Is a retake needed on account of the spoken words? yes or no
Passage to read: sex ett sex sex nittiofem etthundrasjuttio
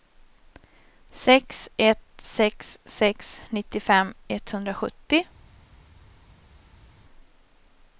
no